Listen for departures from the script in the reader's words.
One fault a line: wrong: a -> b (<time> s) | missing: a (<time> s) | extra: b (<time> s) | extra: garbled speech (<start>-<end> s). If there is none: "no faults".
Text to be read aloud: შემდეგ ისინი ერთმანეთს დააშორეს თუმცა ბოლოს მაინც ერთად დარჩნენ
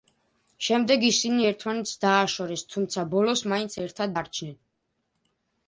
no faults